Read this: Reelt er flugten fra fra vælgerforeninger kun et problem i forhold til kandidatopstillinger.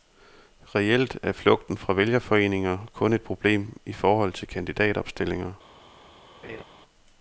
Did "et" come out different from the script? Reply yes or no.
no